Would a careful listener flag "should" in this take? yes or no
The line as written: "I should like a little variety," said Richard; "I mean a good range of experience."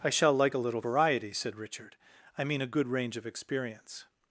yes